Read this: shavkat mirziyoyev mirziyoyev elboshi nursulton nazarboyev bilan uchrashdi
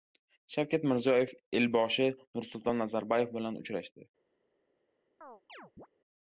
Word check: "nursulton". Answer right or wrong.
right